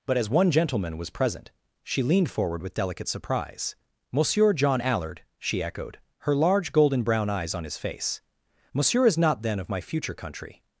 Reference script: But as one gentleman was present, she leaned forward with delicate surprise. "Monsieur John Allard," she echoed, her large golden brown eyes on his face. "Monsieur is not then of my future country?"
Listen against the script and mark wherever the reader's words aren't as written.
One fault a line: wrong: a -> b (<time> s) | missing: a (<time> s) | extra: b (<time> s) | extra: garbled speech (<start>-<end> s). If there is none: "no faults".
no faults